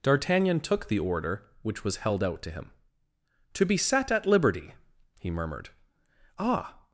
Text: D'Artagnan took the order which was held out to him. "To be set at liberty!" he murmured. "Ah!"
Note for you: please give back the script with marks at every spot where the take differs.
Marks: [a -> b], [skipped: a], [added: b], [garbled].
D'Artagnan took the order which was held out to him. "To be set at liberty!" he murmured. "Ah!"